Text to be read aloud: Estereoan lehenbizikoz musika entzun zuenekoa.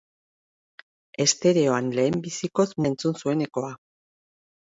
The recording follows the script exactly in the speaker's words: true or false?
false